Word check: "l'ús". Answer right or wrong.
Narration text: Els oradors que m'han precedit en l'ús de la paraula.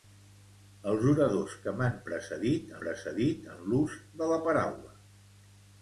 right